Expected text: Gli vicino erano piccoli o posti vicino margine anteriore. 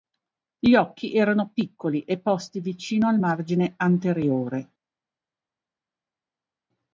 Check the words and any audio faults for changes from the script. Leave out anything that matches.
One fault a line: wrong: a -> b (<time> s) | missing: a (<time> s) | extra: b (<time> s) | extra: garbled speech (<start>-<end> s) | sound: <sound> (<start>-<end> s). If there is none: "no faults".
wrong: vicino -> occhi (0.7 s)
wrong: o -> e (2.0 s)
extra: al (3.1 s)